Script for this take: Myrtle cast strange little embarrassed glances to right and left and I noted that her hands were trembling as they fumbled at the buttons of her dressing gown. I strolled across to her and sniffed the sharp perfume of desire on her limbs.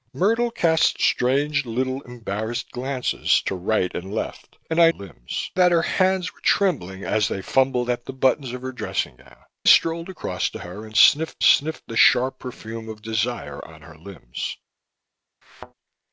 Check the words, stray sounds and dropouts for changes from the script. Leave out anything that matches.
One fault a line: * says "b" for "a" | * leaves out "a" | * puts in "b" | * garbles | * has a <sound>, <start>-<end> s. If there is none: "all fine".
* says "limbs" for "noted"
* leaves out "I"
* puts in "sniffed"
* has a thud, 15.4-15.7 s